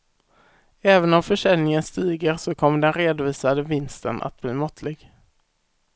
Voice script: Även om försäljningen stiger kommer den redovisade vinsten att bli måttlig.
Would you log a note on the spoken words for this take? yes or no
yes